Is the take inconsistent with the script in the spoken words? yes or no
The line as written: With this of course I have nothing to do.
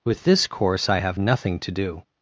yes